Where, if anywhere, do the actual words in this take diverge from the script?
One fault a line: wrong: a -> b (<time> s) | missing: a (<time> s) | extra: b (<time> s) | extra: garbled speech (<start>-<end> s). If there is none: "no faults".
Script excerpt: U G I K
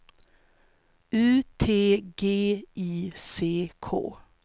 extra: T (1.6 s)
extra: C (3.2 s)